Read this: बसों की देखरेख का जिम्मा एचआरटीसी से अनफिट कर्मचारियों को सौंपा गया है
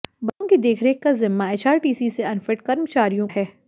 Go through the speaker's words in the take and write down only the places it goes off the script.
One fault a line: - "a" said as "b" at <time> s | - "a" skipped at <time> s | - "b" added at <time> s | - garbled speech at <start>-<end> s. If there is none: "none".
- "को सौंपा गया" skipped at 3.3 s